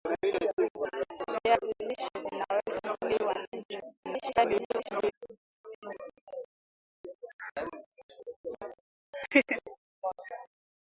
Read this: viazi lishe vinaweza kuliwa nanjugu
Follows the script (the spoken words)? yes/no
no